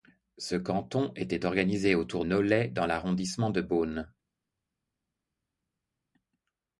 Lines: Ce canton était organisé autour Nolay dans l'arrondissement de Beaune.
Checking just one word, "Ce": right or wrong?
right